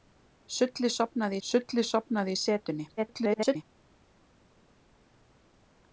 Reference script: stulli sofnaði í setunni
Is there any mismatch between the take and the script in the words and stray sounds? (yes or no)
yes